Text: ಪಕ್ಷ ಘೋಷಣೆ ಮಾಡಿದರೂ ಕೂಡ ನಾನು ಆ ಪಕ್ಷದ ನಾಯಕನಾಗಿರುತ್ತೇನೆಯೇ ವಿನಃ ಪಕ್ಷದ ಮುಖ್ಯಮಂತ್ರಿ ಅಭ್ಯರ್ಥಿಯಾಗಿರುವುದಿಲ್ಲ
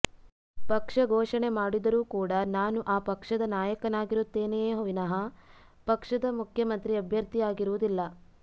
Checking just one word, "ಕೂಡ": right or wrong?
right